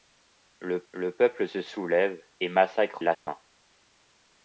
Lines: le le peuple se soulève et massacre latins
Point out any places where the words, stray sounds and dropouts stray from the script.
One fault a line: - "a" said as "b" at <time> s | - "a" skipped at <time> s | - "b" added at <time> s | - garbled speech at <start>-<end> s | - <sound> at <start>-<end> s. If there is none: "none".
- dropout at 3.1-3.3 s